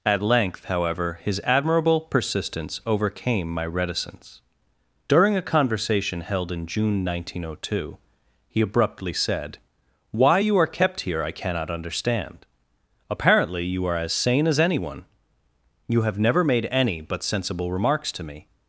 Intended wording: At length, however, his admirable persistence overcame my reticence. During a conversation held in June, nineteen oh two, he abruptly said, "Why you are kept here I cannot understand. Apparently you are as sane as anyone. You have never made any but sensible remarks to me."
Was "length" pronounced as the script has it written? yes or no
yes